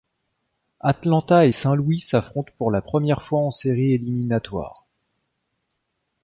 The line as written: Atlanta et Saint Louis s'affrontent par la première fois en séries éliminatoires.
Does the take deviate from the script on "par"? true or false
true